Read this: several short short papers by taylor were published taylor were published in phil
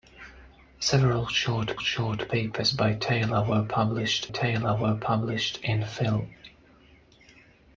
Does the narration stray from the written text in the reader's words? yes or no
no